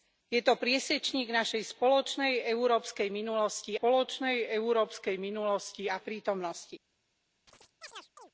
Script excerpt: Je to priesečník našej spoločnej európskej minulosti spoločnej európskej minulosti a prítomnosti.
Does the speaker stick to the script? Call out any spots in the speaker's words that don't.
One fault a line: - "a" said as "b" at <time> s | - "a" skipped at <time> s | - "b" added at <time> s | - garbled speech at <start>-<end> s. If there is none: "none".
none